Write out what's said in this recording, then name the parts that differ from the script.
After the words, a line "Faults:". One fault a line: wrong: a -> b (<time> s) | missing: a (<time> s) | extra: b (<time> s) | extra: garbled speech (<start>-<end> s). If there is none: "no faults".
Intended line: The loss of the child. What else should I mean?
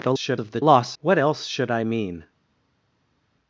The should of the loss. What else should I mean?
Faults:
wrong: loss -> should (0.1 s)
wrong: child -> loss (0.6 s)